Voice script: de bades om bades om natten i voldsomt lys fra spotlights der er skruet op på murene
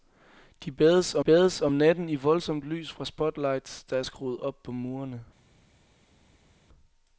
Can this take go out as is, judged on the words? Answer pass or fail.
pass